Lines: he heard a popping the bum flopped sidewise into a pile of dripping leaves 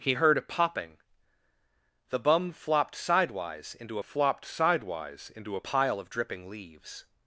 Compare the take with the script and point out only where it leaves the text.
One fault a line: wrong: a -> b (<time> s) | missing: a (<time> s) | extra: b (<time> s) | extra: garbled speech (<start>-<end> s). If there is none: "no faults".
extra: flopped sidewise into (4.0 s)